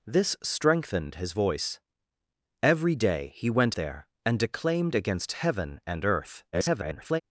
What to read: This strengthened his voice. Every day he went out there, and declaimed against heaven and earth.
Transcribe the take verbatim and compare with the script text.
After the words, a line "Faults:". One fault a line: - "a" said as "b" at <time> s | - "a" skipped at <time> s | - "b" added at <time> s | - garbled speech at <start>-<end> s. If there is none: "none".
This strengthened his voice. Every day he went there, and declaimed against heaven and earth. [garbled]
Faults:
- "out" skipped at 3.8 s
- garbled speech at 6.5-7.2 s